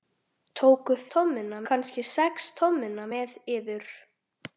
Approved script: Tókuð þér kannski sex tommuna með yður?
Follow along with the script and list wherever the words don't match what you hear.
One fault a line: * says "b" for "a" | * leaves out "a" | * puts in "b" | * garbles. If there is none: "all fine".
* says "tommuna" for "þér"